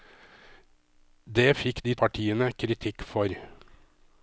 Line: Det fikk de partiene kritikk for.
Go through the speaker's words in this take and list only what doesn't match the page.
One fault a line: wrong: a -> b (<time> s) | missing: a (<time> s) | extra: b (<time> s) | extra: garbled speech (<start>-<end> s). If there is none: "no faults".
no faults